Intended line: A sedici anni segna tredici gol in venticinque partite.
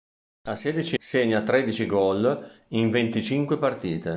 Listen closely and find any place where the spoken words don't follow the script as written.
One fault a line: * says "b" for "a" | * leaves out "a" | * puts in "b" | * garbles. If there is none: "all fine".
* leaves out "anni"